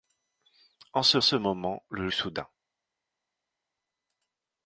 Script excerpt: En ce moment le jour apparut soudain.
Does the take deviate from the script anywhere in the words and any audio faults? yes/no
yes